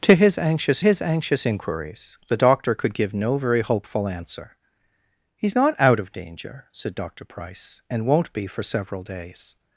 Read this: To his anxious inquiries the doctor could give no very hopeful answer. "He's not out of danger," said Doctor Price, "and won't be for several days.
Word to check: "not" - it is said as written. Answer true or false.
true